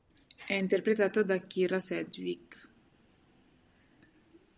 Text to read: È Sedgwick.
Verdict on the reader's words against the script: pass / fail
fail